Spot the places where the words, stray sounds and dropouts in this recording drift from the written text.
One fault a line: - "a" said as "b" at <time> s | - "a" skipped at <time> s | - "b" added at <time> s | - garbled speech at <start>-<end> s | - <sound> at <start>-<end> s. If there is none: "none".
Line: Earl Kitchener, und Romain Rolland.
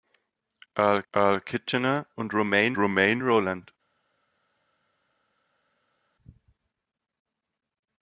- "earl" added at 1.1 s
- "Romain" added at 2.8 s